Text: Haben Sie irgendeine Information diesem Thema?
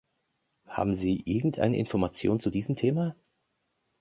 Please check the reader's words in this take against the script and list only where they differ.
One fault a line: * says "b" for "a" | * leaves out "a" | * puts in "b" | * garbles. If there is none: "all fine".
* puts in "zu"